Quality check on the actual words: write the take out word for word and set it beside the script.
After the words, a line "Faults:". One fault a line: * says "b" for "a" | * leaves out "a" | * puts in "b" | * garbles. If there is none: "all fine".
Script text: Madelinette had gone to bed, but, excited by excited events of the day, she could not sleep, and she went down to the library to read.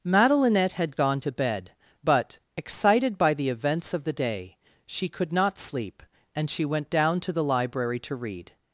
Madelinette had gone to bed, but, excited by the events of the day, she could not sleep, and she went down to the library to read.
Faults:
* says "the" for "excited"